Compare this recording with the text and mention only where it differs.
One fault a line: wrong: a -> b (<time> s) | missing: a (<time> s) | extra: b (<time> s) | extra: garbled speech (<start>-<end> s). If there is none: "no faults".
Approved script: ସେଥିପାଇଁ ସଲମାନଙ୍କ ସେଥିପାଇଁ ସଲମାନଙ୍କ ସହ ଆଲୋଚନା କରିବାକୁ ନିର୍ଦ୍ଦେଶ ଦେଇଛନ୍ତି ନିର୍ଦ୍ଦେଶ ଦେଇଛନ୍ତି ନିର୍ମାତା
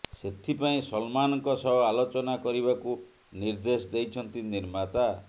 missing: ସେଥିପାଇଁ ସଲମାନଙ୍କ (1.5 s)
missing: ନିର୍ଦ୍ଦେଶ ଦେଇଛନ୍ତି (4.5 s)